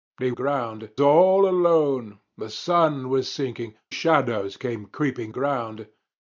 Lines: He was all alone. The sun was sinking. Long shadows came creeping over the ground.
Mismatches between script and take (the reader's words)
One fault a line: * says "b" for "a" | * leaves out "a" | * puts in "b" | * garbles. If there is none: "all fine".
* says "ground" for "was"
* leaves out "Long"
* leaves out "over the"